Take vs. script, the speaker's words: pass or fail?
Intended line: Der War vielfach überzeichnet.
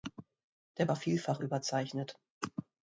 pass